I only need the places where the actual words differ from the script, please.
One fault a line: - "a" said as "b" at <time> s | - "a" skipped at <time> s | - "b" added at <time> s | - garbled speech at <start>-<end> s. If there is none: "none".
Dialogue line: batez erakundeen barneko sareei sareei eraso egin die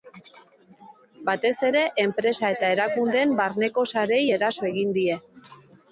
- "ere enpresa eta" added at 1.7 s
- "sareei" skipped at 4.2 s